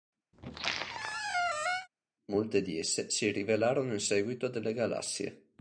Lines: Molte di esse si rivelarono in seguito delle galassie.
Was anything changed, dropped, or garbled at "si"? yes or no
no